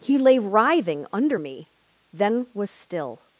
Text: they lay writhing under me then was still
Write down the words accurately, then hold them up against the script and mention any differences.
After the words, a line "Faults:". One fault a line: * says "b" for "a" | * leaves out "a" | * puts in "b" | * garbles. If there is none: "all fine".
he lay writhing under me then was still
Faults:
* says "he" for "they"